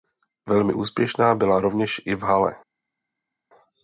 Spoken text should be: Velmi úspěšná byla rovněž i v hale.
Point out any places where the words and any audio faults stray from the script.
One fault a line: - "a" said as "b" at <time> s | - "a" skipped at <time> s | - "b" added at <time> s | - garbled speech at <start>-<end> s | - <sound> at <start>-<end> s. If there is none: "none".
none